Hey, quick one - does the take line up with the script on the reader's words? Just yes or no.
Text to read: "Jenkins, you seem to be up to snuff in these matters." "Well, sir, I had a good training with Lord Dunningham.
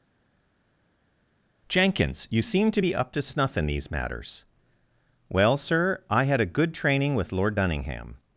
yes